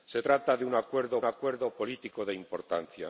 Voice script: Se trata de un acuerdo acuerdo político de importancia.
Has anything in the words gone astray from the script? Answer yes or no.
no